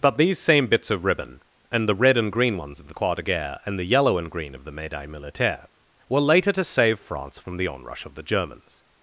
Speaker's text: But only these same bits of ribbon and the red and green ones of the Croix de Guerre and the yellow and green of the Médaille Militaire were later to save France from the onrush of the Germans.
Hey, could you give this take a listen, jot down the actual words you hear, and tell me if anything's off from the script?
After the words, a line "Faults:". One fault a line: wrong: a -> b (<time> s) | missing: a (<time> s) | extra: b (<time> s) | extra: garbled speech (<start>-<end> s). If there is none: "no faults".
But these same bits of ribbon and the red and green ones of the Croix de Guerre and the yellow and green of the Médaille Militaire were later to save France from the onrush of the Germans.
Faults:
missing: only (0.2 s)